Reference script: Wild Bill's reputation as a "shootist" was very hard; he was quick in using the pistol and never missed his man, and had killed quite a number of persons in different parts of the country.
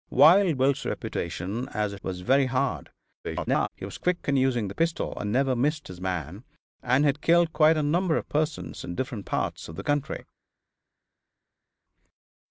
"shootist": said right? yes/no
no